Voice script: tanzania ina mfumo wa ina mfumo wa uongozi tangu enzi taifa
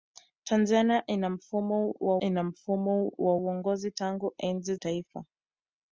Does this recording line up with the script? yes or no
yes